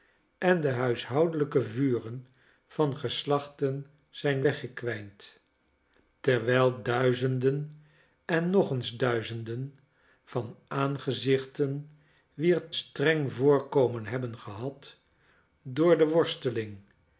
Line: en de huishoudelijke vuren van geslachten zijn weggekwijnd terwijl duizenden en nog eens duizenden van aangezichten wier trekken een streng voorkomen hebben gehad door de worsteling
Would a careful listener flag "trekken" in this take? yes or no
yes